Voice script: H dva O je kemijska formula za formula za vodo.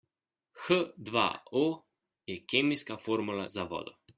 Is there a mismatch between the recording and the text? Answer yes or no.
yes